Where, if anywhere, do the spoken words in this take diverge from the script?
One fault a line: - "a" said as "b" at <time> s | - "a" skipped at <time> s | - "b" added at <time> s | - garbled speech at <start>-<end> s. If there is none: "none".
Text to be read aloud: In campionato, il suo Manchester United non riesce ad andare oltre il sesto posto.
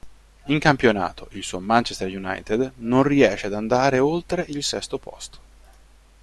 none